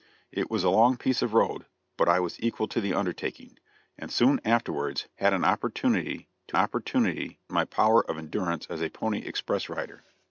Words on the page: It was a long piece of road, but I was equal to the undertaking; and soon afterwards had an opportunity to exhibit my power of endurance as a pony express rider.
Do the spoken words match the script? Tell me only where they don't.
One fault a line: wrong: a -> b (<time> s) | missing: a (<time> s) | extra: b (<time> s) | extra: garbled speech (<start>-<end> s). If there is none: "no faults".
wrong: exhibit -> opportunity (6.6 s)